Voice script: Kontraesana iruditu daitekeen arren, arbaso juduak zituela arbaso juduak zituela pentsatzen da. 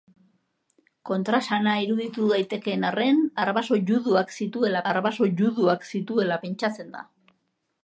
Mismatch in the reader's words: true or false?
false